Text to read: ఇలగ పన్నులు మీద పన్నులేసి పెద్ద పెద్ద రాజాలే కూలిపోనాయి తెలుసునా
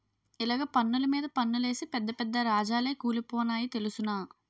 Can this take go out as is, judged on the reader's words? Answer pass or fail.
pass